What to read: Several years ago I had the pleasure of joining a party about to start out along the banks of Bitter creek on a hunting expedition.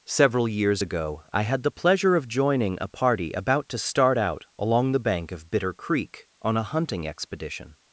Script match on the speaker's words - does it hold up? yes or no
no